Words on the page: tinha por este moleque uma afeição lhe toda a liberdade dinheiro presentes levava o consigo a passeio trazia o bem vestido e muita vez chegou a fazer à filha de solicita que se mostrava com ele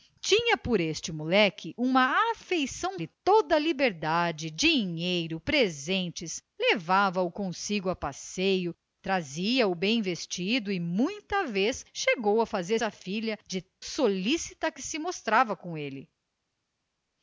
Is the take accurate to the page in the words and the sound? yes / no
yes